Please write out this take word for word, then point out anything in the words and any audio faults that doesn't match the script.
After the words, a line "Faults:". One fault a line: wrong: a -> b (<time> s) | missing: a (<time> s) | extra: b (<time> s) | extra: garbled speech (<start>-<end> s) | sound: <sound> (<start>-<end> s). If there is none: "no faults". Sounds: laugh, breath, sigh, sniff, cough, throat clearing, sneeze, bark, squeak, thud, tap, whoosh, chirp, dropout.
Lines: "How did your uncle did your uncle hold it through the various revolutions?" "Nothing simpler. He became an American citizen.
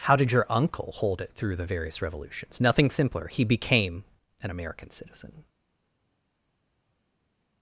"How did your uncle hold it through the various revolutions?" "Nothing simpler. He became an American citizen.
Faults:
missing: did your uncle (0.9 s)